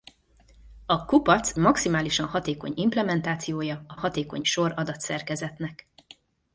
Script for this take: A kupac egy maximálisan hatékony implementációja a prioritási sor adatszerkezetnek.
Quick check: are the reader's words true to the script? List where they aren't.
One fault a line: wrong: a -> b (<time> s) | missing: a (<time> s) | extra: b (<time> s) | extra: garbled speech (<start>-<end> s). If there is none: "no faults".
missing: egy (1.5 s)
wrong: prioritási -> hatékony (4.0 s)